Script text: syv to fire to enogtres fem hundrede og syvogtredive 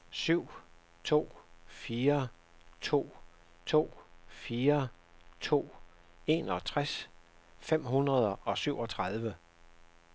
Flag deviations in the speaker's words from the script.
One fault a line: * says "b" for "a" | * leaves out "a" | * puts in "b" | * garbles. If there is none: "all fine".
* puts in "to fire to"